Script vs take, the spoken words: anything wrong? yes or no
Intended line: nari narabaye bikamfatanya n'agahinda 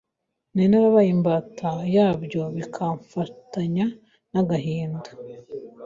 yes